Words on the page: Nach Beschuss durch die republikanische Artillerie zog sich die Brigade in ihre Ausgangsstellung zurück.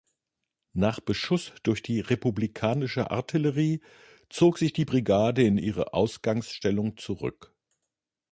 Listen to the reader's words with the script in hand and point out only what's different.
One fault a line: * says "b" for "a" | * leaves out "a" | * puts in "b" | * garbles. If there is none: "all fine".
all fine